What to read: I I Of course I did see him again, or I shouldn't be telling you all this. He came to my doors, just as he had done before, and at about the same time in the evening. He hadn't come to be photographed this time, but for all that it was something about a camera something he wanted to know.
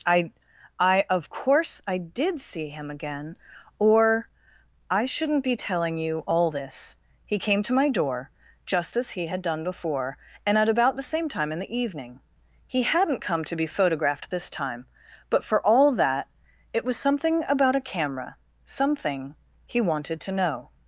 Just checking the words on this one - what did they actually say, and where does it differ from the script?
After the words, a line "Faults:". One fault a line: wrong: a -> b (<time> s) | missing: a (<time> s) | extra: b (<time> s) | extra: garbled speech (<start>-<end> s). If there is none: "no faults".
I I Of course I did see him again, or I shouldn't be telling you all this. He came to my door, just as he had done before, and at about the same time in the evening. He hadn't come to be photographed this time, but for all that it was something about a camera something he wanted to know.
Faults:
wrong: doors -> door (7.9 s)